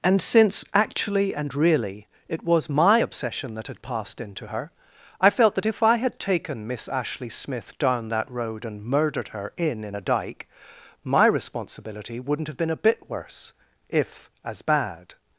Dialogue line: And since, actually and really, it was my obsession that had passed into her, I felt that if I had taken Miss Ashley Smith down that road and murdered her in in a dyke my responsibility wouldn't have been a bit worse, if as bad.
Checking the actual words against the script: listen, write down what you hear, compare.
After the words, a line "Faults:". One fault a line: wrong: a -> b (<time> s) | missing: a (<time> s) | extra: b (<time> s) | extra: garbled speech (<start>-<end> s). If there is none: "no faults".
And since, actually and really, it was my obsession that had passed into her, I felt that if I had taken Miss Ashley Smith down that road and murdered her in in a dyke my responsibility wouldn't have been a bit worse, if as bad.
Faults:
no faults